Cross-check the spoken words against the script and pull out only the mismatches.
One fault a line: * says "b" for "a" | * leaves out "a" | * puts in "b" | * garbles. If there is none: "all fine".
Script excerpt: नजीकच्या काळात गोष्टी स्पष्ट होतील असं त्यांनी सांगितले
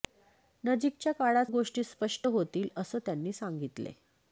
all fine